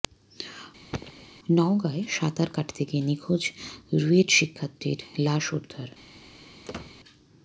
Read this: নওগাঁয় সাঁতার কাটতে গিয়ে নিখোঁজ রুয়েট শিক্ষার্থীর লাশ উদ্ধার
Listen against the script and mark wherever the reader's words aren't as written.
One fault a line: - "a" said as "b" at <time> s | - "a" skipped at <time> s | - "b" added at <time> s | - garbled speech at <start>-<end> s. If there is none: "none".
none